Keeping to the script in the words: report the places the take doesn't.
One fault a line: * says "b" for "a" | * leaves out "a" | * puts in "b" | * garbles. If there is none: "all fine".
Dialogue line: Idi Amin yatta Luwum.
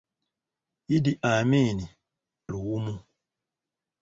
* leaves out "yatta"